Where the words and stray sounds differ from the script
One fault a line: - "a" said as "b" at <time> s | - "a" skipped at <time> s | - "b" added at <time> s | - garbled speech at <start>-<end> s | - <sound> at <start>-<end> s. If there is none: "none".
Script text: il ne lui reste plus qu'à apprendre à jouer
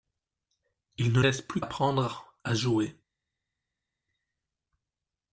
- "lui" skipped at 1.2 s
- "qu'à" skipped at 1.6 s